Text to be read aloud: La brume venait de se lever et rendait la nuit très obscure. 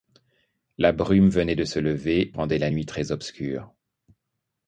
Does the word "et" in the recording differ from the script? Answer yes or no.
yes